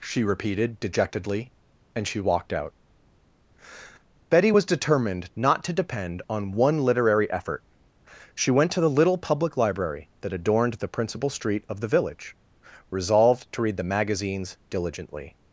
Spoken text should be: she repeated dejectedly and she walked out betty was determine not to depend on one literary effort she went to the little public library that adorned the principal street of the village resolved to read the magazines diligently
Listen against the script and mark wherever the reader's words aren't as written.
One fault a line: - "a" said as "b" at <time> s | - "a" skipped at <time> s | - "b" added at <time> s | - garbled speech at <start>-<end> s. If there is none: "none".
- "determine" said as "determined" at 4.6 s